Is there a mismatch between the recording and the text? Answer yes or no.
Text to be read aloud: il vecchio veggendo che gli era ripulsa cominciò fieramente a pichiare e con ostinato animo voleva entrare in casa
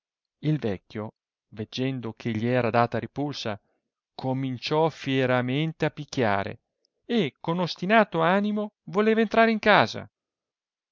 yes